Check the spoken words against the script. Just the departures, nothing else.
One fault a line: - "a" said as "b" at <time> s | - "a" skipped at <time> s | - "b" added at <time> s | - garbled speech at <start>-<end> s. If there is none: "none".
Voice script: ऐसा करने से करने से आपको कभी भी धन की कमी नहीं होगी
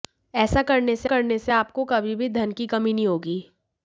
none